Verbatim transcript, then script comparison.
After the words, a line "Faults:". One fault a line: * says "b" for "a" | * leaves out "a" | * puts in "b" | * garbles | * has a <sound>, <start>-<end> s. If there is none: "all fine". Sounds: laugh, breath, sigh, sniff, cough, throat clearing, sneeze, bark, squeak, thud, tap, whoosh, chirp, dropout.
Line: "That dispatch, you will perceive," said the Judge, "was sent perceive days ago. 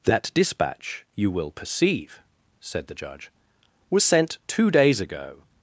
"That dispatch, you will perceive," said the Judge, "was sent two days ago.
Faults:
* says "two" for "perceive"